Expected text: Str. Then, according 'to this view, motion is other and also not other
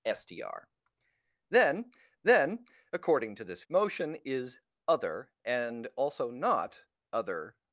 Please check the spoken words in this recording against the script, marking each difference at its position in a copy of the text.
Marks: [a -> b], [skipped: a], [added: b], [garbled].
Str. Then, [added: then] according 'to this [skipped: view,] motion is other and also not other